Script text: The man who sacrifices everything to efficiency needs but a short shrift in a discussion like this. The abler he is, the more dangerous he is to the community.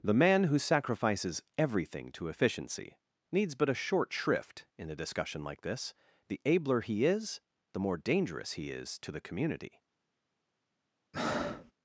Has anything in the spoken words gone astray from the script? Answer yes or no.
no